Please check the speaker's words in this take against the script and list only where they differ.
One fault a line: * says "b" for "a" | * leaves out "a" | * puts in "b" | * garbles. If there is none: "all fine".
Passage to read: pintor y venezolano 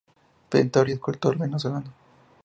* puts in "escultor"